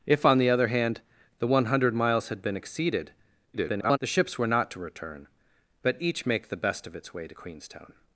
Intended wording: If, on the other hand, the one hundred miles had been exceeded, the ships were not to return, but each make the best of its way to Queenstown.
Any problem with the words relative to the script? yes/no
yes